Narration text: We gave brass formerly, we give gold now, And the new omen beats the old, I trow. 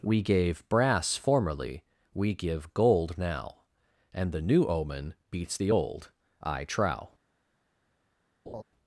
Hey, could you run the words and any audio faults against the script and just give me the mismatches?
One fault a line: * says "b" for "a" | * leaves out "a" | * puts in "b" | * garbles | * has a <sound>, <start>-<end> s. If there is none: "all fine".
* has a laugh, 8.5-8.6 s